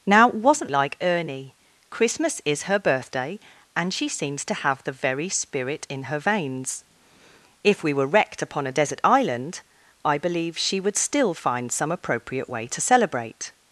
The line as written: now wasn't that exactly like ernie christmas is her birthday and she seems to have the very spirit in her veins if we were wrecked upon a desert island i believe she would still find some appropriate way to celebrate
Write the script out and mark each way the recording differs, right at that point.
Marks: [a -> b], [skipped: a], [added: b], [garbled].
now wasn't [skipped: that exactly] like ernie christmas is her birthday and she seems to have the very spirit in her veins if we were wrecked upon a desert island i believe she would still find some appropriate way to celebrate